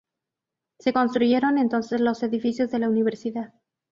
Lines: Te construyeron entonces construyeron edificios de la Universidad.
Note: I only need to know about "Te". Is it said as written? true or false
false